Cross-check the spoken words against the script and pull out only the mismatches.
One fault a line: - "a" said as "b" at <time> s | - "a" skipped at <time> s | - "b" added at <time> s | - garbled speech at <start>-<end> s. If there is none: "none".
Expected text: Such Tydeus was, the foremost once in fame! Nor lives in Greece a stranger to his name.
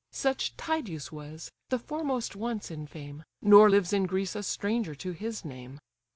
none